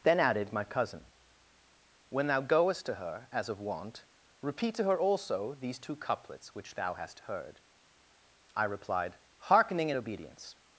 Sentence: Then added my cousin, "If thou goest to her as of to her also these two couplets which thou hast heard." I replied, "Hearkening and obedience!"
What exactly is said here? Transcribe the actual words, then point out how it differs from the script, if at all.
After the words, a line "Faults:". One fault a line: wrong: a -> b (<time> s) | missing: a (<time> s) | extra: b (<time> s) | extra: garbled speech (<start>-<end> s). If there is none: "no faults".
Then added my cousin, "When thou goest to her as of wont, repeat to her also these two couplets which thou hast heard." I replied, "Hearkening and obedience!"
Faults:
wrong: If -> When (2.1 s)
extra: wont repeat (3.6 s)